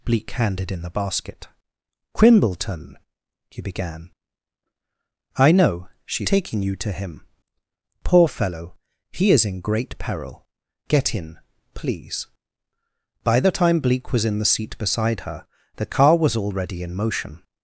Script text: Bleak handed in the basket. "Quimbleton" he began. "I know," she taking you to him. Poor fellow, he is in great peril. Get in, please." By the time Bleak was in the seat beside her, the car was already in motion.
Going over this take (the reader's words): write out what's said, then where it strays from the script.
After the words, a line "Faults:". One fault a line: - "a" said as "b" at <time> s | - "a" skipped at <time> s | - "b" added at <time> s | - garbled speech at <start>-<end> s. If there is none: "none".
Bleak handed in the basket. "Quimbleton" he began. "I know," she taking you to him. Poor fellow, he is in great peril. Get in, please." By the time Bleak was in the seat beside her, the car was already in motion.
Faults:
none